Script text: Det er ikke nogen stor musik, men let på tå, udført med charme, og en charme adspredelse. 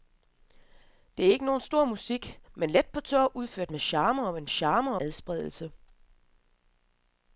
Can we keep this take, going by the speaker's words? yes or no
yes